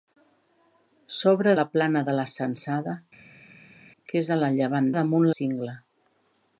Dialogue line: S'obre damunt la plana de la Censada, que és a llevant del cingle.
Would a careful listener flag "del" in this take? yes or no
yes